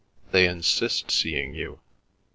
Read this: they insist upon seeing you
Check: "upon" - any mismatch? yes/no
yes